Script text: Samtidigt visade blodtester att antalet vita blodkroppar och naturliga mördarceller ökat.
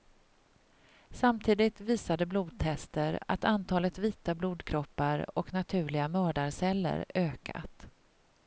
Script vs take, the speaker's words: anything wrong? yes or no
no